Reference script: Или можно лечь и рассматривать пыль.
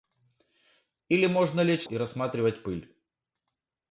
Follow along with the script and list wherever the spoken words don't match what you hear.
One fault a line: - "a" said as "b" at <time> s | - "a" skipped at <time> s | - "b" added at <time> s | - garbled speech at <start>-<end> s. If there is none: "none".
none